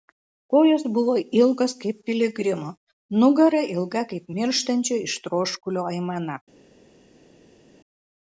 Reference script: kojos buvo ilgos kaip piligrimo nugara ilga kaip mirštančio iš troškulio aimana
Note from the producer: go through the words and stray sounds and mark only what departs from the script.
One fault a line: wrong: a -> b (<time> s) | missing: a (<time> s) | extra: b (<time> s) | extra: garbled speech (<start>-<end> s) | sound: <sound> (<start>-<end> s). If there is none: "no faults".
no faults